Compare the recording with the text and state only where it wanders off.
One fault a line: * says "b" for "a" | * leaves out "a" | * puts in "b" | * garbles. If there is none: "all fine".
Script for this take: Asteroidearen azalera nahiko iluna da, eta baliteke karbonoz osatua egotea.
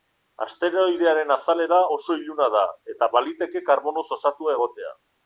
* says "oso" for "nahiko"